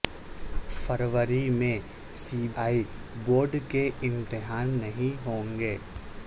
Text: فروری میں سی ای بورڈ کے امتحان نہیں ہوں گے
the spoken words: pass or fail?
pass